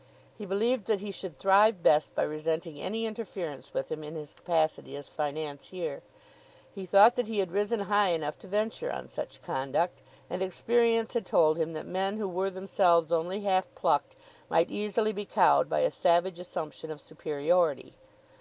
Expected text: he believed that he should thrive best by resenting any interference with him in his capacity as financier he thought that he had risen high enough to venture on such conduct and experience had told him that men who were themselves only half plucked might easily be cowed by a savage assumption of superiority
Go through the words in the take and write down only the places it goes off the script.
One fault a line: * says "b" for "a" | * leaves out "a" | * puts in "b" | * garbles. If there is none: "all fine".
all fine